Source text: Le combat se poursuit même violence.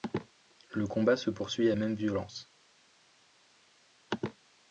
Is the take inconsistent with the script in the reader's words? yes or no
no